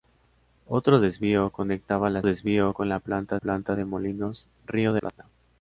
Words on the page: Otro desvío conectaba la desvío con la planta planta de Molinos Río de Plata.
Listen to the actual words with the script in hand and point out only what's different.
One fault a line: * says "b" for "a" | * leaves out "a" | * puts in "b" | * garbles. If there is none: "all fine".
all fine